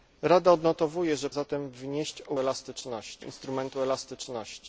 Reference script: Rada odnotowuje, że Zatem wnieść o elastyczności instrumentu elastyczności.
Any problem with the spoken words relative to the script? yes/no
no